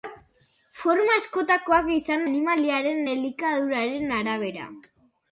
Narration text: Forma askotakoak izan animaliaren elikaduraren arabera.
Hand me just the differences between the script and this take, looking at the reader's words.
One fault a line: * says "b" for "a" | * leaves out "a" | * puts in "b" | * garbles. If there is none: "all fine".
all fine